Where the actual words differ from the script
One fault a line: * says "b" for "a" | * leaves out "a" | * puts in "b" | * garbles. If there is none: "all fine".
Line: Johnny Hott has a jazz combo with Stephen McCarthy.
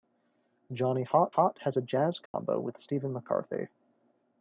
* puts in "Hott"